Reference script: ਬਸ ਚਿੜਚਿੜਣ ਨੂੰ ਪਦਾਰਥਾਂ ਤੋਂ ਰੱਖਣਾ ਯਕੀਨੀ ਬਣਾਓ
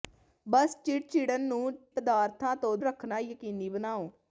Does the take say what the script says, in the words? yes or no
yes